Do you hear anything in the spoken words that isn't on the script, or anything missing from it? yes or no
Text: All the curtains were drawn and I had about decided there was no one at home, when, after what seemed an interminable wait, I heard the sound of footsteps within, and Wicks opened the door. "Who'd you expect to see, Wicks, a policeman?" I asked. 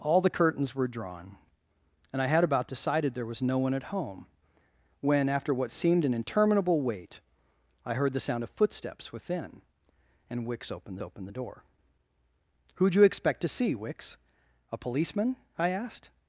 yes